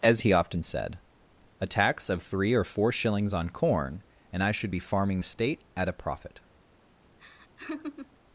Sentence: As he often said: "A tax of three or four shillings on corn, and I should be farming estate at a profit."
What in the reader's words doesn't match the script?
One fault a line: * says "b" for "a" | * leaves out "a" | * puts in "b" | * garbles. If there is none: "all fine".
all fine